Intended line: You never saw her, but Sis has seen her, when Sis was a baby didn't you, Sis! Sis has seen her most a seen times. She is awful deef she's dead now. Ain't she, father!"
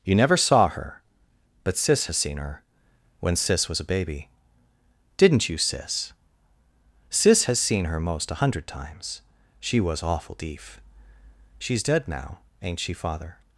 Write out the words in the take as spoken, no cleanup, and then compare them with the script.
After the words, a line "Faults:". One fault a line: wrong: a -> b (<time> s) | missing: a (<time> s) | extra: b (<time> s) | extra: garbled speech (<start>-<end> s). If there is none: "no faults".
You never saw her, but Sis has seen her, when Sis was a baby didn't you, Sis! Sis has seen her most a hundred times. She was awful deef she's dead now. Ain't she, father!"
Faults:
wrong: seen -> hundred (8.4 s)
wrong: is -> was (9.8 s)